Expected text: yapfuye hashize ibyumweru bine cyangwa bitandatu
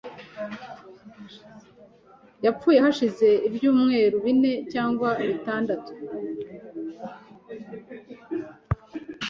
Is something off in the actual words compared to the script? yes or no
no